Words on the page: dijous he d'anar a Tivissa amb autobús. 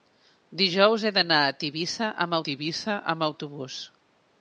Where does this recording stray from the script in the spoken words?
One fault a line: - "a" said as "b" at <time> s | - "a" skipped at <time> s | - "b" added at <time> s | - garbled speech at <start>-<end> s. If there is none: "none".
- "Tivissa amb" added at 2.5 s